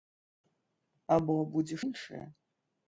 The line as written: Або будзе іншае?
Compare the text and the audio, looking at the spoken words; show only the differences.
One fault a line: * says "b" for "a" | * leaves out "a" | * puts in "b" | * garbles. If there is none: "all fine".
all fine